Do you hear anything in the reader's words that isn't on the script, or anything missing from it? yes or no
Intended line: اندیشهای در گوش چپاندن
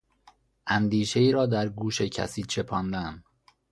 yes